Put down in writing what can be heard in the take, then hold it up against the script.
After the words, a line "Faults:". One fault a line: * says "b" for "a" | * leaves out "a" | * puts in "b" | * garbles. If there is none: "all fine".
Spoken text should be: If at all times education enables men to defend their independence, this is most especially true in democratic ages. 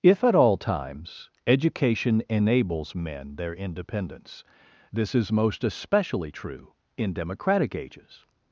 If at all times education enables men their independence, this is most especially true in democratic ages.
Faults:
* leaves out "to defend"